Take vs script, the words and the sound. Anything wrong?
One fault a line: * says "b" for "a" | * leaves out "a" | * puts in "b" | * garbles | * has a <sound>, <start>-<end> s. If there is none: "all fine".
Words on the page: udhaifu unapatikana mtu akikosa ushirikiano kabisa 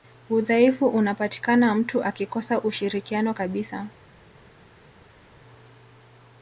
all fine